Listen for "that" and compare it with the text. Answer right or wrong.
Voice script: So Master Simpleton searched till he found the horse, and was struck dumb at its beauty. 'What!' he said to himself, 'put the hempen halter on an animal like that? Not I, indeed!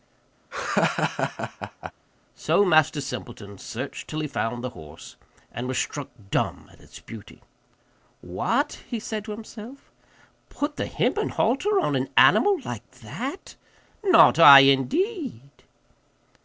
right